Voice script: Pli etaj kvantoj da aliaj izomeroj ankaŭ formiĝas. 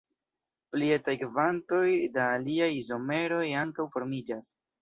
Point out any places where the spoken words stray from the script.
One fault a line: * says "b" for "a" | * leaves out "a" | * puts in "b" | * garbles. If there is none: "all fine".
all fine